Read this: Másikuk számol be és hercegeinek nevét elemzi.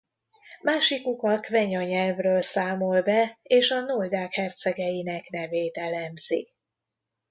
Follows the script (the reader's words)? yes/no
no